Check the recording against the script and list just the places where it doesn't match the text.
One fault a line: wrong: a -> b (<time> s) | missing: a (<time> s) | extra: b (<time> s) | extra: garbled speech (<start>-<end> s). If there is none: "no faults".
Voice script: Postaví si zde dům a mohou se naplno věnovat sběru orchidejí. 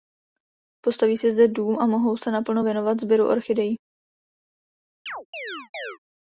no faults